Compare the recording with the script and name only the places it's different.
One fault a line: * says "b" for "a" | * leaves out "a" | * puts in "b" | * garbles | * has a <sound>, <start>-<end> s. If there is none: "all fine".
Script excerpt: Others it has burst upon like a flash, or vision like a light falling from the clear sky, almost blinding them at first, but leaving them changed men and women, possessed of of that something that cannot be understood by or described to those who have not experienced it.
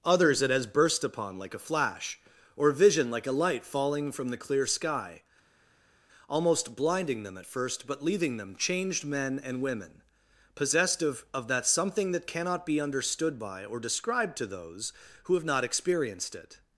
all fine